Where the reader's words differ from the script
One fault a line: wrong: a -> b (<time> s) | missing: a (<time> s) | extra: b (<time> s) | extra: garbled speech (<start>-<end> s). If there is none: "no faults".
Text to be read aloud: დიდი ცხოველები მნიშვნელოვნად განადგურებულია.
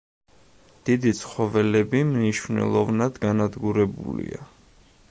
no faults